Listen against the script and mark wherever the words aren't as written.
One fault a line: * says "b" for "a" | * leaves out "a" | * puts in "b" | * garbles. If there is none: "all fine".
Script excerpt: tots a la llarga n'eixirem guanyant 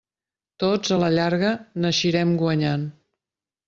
all fine